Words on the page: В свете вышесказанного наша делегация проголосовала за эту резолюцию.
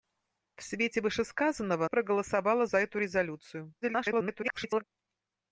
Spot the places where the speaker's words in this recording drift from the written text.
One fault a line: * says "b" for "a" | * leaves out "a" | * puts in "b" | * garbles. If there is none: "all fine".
* leaves out "наша делегация"
* garbles